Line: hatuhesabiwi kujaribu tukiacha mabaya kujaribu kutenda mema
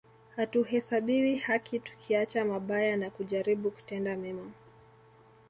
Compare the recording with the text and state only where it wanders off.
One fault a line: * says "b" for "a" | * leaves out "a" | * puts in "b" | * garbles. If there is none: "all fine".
* says "haki" for "kujaribu"
* puts in "na"